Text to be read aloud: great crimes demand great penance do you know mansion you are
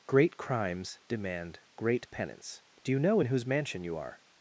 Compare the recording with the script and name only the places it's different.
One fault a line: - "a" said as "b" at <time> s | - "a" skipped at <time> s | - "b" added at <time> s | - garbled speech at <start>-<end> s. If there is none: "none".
- "in whose" added at 3.2 s